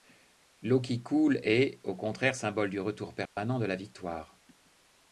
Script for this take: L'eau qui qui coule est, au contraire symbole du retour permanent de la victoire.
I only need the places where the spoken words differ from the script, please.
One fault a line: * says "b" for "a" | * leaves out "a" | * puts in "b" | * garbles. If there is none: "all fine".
* leaves out "qui"